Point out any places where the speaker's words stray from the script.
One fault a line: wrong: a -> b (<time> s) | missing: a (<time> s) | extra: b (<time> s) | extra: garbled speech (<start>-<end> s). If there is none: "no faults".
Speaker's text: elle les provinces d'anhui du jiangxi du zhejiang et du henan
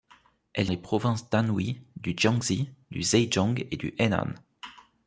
no faults